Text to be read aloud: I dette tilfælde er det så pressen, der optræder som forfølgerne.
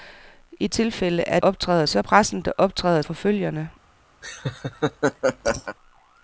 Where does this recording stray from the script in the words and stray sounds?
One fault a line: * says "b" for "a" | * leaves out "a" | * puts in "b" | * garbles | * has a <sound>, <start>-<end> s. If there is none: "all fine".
* leaves out "dette"
* says "optræder" for "det"
* leaves out "som"
* has a laugh, 4.2-5.8 s